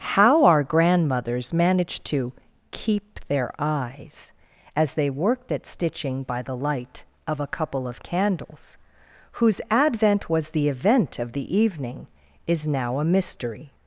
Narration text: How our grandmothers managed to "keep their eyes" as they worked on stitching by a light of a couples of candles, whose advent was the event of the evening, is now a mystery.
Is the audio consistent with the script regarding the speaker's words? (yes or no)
no